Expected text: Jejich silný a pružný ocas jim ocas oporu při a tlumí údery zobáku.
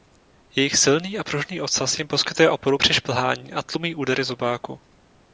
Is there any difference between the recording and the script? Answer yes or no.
yes